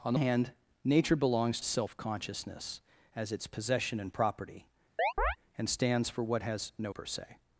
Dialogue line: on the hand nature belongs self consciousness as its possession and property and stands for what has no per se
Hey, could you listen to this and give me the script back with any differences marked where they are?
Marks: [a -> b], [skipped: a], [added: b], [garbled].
on the hand nature belongs self consciousness as its possession and property and stands for what has no per se